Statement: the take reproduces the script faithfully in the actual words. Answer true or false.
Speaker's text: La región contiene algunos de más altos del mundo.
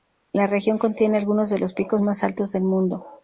false